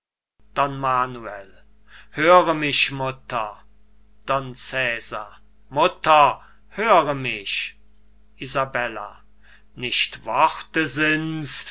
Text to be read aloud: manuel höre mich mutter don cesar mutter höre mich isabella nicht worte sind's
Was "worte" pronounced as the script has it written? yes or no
yes